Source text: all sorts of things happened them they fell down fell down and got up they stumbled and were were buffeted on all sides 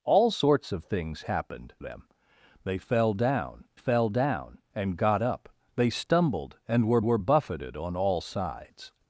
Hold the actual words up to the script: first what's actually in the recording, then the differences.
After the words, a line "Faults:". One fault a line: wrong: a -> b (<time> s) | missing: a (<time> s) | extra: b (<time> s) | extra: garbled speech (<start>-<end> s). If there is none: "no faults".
all sorts of things happened them they fell down fell down and got up they stumbled and were were buffeted on all sides
Faults:
no faults